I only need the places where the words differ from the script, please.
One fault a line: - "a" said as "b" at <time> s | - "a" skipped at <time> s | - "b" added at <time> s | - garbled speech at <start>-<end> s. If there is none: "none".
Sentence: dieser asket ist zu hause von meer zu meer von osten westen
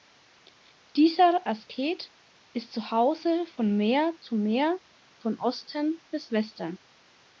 - "bis" added at 6.1 s